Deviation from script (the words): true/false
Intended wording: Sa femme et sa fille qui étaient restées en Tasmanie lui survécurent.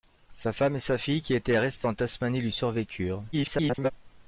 true